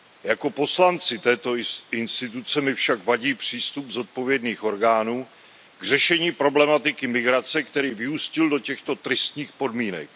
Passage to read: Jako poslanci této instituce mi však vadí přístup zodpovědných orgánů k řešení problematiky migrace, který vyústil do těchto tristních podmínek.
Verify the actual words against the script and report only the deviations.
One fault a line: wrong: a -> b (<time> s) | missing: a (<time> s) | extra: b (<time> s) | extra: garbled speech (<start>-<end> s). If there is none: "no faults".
no faults